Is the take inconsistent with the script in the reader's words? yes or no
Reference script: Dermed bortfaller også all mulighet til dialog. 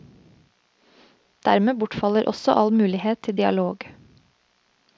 no